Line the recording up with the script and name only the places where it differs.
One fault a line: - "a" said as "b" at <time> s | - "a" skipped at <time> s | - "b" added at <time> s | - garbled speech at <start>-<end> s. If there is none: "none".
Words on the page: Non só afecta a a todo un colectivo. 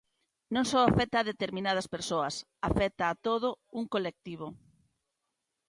- "determinadas persoas afecta" added at 1.3 s